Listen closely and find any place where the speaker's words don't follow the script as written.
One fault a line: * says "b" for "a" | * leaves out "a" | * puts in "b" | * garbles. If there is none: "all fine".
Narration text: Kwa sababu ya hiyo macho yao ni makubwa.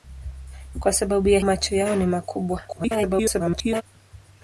* leaves out "hiyo"
* garbles